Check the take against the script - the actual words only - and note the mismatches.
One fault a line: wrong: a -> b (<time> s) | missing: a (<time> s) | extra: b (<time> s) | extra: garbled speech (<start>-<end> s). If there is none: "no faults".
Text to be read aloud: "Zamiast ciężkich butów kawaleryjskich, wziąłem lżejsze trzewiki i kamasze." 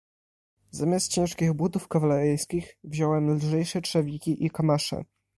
no faults